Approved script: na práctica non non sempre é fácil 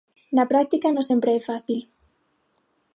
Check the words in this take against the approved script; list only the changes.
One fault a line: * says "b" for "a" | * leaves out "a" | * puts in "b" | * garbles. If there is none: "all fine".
* leaves out "non"